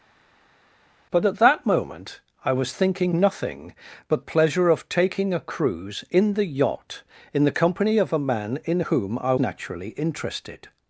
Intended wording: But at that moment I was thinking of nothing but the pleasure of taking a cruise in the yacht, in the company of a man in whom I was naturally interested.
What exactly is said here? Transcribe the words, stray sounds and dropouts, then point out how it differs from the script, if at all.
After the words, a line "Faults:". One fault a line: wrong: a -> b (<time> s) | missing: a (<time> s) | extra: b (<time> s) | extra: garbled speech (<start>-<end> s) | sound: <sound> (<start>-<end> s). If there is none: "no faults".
But at that moment I was thinking nothing but pleasure of taking a cruise in the yacht, in the company of a man in whom I naturally interested.
Faults:
missing: of (3.1 s)
missing: the (4.2 s)
missing: was (9.3 s)